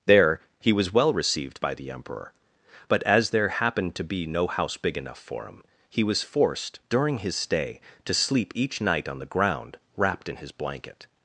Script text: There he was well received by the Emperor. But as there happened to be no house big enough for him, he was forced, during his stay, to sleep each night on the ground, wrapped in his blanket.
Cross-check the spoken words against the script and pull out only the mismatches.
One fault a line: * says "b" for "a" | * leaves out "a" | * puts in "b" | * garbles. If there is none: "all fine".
all fine